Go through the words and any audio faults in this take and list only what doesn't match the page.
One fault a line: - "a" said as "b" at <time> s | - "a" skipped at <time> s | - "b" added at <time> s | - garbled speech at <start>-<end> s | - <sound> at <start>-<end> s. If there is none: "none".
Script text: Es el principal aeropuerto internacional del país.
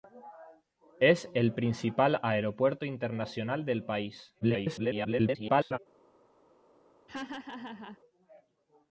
- garbled speech at 4.4-5.8 s
- laugh at 7.1-8.0 s